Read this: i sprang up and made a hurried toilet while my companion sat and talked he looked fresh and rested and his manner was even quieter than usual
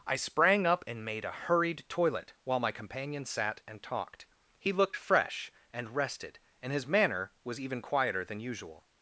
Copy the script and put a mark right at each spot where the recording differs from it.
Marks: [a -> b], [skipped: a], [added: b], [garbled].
i sprang up and made a hurried toilet while my companion sat and talked he looked fresh and rested and his manner was even quieter than usual